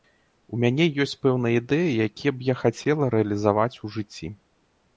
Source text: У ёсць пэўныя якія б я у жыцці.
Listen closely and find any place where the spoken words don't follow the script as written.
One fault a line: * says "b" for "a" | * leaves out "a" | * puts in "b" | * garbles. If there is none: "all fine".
* puts in "мяне"
* puts in "ідэі"
* puts in "хацела рэалізаваць"